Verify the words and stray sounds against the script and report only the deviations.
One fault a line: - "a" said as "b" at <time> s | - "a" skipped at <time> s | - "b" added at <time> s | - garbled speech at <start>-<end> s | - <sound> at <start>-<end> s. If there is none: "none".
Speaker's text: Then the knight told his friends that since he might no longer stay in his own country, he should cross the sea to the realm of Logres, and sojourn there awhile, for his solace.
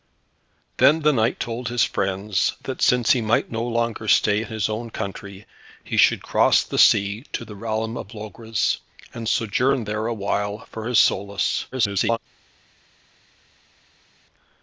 - garbled speech at 11.7-12.2 s